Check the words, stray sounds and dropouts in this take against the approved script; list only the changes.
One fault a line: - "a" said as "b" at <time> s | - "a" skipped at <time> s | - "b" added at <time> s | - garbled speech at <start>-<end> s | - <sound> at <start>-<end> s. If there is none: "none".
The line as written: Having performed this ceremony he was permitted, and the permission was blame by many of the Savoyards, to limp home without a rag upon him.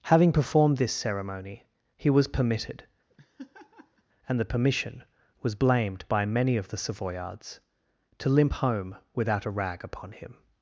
- laugh at 3.1-4.0 s
- "blame" said as "blamed" at 5.5 s